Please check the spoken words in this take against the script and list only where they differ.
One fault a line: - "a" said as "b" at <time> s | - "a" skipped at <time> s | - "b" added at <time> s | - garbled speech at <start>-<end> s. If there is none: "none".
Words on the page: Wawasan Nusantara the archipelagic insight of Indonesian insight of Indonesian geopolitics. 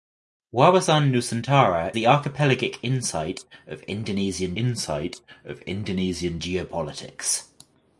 none